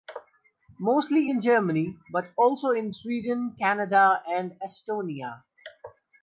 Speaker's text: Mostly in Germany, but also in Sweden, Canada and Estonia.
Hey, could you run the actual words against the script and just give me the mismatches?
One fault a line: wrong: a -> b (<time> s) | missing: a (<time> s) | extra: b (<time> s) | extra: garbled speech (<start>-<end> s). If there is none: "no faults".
no faults